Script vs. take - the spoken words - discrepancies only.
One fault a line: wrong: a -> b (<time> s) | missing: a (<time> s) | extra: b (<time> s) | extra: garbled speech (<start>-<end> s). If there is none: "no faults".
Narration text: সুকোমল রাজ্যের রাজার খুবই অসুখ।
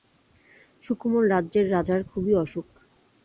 no faults